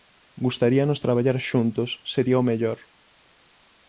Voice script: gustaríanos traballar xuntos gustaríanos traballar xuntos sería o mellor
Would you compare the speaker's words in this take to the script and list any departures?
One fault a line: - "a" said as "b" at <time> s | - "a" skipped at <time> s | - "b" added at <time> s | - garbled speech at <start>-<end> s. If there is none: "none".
- "gustaríanos traballar xuntos" skipped at 1.9 s